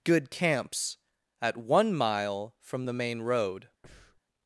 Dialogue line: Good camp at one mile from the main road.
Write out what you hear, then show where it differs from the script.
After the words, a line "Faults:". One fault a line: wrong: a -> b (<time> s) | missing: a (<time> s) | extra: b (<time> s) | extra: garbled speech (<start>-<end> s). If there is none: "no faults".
Good camps at one mile from the main road.
Faults:
wrong: camp -> camps (0.3 s)